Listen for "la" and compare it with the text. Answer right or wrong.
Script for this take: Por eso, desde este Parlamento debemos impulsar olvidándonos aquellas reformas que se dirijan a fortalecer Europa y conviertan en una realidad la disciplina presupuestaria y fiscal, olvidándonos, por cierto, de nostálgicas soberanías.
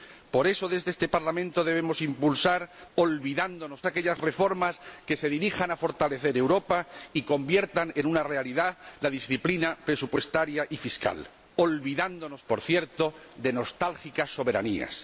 right